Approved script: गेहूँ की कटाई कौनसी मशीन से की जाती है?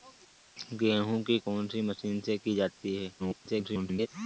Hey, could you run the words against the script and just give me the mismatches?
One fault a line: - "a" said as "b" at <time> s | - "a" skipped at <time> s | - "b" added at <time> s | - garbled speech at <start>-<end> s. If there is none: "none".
- "कटाई" skipped at 1.4 s
- garbled speech at 3.2-4.1 s